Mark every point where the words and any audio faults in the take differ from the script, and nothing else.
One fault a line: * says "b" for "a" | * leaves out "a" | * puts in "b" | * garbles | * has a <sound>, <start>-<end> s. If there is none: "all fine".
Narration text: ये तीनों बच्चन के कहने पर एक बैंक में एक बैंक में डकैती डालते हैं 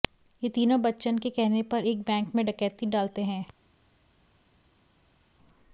* leaves out "एक बैंक में"